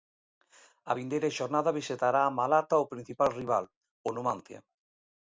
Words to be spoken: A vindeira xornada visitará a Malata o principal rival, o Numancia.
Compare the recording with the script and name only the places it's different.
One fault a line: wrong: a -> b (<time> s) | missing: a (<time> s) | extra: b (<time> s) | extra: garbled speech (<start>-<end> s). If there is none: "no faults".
no faults